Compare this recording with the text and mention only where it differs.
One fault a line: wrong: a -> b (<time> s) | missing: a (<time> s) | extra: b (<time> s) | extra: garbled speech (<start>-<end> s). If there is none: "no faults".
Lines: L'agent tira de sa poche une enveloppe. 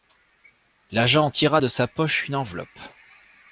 no faults